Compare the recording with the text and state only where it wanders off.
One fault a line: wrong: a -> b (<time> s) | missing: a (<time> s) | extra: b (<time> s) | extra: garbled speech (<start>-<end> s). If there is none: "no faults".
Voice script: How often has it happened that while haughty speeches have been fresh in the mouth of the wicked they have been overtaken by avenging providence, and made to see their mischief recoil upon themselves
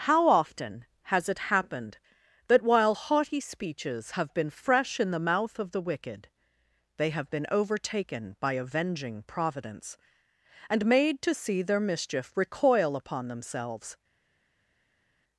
no faults